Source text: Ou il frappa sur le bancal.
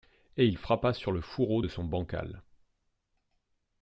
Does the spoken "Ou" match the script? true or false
false